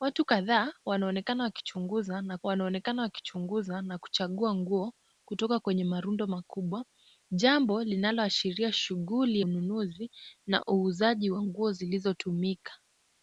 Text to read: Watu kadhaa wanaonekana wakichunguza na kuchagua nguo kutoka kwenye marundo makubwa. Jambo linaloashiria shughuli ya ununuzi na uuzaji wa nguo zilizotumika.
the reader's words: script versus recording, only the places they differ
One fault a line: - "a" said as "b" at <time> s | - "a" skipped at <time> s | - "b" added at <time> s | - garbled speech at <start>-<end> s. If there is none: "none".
- "wanaonekana wakichunguza na" added at 2.4 s
- "ya" skipped at 9.4 s